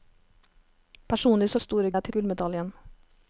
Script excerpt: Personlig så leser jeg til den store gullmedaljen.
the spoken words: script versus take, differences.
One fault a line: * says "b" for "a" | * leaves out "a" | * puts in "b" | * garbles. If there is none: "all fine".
* says "store" for "leser"
* leaves out "den store"